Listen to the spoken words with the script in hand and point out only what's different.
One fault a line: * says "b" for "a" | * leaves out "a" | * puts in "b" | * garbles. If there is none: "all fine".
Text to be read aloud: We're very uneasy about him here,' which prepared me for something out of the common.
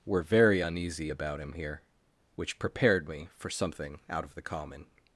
all fine